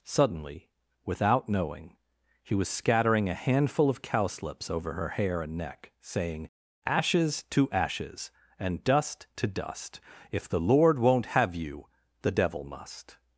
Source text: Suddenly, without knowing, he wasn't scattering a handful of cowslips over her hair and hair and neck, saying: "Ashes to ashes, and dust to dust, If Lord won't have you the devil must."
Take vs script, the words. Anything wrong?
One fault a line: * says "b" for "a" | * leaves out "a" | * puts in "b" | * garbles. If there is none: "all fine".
* says "was" for "wasn't"
* leaves out "hair and"
* puts in "the"